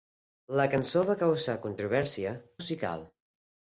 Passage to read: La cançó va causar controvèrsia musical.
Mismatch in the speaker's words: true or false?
false